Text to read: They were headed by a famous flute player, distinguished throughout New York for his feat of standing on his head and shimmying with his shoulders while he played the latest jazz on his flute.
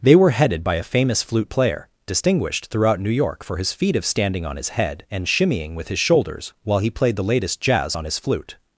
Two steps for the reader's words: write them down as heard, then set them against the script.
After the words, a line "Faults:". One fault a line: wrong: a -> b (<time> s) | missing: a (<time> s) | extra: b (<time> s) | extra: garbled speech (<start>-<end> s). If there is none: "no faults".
They were headed by a famous flute player, distinguished throughout New York for his feat of standing on his head and shimmying with his shoulders while he played the latest jazz on his flute.
Faults:
no faults